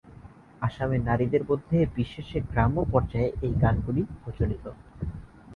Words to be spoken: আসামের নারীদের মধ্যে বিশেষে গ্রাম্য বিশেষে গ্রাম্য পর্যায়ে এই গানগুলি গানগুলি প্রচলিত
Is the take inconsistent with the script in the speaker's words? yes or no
yes